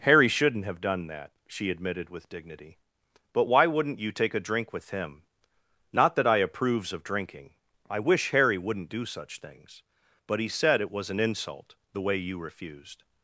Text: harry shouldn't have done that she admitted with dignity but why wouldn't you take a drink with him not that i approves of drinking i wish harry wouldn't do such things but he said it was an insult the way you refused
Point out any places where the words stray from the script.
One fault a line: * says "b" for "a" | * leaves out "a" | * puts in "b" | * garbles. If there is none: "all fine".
all fine